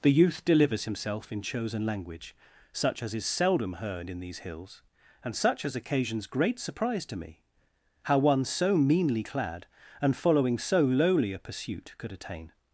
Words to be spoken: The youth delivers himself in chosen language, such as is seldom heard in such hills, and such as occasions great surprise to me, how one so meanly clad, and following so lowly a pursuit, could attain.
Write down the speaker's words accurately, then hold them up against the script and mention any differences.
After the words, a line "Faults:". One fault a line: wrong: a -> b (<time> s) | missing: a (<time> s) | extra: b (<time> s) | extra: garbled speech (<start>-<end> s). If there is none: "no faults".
The youth delivers himself in chosen language, such as is seldom heard in these hills, and such as occasions great surprise to me, how one so meanly clad, and following so lowly a pursuit, could attain.
Faults:
wrong: such -> these (4.2 s)